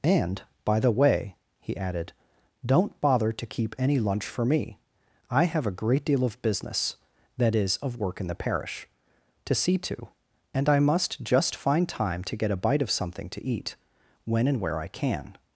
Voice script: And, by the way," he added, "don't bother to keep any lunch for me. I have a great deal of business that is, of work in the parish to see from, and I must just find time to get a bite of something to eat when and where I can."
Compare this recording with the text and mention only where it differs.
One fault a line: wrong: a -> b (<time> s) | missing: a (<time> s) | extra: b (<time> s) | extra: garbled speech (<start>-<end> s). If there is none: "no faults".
wrong: from -> to (9.8 s)